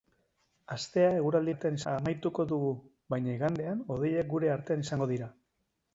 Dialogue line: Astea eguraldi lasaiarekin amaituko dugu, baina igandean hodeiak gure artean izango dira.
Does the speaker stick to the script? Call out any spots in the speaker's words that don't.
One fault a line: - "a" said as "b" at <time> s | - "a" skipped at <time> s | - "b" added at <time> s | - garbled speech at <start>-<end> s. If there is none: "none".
- "lasaiarekin" said as "artean" at 1.5 s